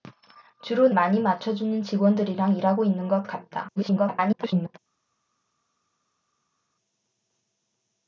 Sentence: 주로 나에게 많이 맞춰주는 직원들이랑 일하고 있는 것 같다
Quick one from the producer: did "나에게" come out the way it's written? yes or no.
no